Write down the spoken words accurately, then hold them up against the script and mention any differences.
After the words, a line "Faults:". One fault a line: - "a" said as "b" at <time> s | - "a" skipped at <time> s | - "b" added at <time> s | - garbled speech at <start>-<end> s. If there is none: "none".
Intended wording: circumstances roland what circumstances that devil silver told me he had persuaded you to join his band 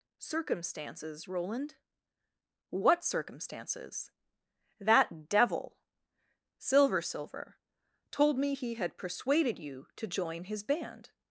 circumstances roland what circumstances that devil silver silver told me he had persuaded you to join his band
Faults:
- "silver" added at 7.0 s